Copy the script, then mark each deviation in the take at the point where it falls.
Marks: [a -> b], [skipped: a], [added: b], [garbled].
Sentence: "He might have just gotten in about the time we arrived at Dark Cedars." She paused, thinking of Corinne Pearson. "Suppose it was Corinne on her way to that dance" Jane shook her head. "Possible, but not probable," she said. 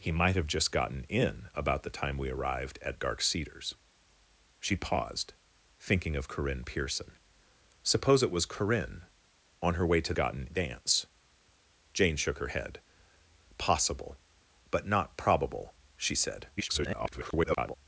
"He might have just gotten in about the time we arrived at Dark Cedars." She paused, thinking of Corinne Pearson. "Suppose it was Corinne on her way to [that -> gotten] dance" Jane shook her head. "Possible, but not probable," she said. [garbled]